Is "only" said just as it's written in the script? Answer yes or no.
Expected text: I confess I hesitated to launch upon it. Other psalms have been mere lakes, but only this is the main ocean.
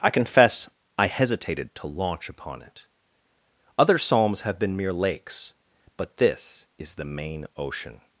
no